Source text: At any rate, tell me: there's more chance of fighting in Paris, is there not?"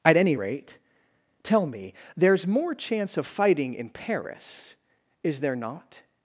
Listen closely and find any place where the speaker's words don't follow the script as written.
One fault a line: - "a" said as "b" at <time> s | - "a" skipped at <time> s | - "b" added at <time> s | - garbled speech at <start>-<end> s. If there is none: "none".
none